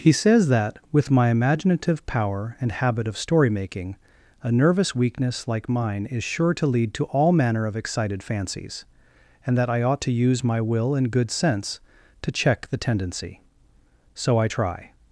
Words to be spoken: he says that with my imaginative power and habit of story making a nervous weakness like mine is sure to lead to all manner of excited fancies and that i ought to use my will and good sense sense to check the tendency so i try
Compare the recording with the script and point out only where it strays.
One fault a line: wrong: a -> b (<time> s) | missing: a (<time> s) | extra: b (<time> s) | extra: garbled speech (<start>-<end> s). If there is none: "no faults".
missing: sense (11.8 s)